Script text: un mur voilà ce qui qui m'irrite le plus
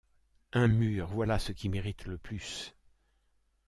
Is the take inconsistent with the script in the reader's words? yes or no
yes